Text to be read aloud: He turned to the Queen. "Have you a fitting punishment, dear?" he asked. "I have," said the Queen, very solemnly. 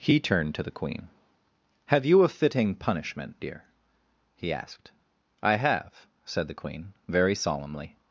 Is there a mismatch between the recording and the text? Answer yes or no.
no